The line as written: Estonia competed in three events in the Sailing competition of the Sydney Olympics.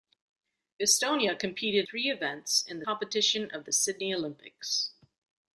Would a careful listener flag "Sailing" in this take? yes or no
yes